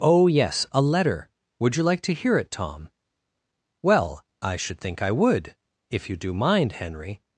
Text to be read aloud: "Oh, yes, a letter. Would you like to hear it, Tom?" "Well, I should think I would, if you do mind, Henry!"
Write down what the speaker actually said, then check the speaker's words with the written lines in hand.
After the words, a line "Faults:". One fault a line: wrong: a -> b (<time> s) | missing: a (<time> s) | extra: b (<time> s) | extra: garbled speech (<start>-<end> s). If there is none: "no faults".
"Oh, yes, a letter. Would you like to hear it, Tom?" "Well, I should think I would, if you do mind, Henry!"
Faults:
no faults